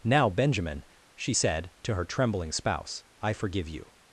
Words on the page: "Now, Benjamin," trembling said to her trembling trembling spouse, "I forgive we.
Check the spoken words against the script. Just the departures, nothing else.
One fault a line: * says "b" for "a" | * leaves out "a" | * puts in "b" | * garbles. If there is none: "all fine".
* says "she" for "trembling"
* leaves out "trembling"
* says "you" for "we"